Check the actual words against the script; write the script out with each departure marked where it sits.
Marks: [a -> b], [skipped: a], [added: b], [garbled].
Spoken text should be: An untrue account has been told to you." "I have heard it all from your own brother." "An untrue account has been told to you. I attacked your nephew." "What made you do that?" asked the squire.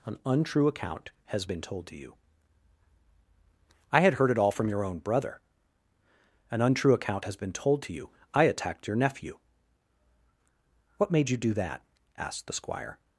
An untrue account has been told to you." "I [have -> had] heard it all from your own brother." "An untrue account has been told to you. I attacked your nephew." "What made you do that?" asked the squire.